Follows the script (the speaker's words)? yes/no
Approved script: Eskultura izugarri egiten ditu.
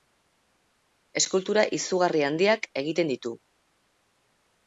no